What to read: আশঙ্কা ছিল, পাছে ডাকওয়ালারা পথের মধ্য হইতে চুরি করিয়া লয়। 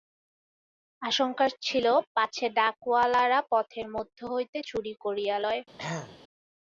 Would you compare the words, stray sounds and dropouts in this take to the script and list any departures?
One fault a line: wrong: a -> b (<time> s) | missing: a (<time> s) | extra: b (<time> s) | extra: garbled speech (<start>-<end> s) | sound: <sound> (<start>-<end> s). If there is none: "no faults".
sound: throat clearing (5.8-6.2 s)